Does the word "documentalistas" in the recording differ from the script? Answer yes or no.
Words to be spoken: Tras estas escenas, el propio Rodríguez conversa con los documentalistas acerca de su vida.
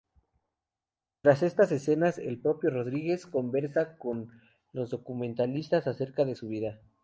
no